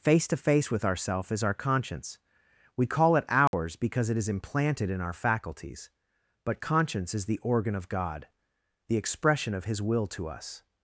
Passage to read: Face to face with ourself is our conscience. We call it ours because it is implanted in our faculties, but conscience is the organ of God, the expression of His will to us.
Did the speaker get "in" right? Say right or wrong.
right